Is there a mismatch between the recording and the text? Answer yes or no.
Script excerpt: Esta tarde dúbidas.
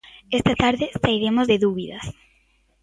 yes